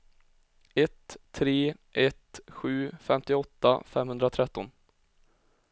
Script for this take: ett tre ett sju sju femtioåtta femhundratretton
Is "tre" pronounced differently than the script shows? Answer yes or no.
no